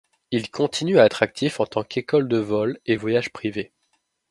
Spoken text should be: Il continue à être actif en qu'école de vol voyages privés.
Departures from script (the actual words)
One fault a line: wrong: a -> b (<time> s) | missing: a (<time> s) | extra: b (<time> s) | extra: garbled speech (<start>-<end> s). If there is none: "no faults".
extra: tant (1.7 s)
extra: et (2.9 s)